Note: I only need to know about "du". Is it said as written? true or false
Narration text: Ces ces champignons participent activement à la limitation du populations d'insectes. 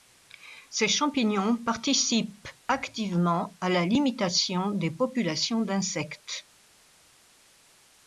false